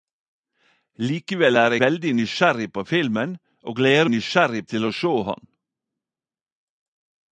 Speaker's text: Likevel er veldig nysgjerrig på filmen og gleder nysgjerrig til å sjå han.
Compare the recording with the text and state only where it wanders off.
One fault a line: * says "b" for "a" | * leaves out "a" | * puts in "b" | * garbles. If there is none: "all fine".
all fine